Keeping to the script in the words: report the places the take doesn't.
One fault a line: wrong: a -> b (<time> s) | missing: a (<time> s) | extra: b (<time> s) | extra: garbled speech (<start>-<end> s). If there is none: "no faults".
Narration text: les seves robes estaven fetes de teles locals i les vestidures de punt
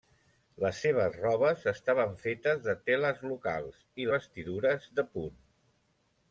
missing: les (4.1 s)